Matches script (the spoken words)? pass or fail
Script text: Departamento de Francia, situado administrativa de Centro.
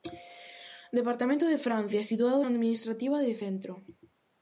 pass